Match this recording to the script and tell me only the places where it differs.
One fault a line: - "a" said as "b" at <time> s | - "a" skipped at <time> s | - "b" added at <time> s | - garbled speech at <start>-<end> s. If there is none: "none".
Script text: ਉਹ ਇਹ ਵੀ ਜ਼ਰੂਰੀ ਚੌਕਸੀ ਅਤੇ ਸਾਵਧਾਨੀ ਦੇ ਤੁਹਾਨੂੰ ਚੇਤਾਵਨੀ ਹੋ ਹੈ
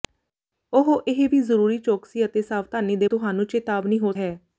none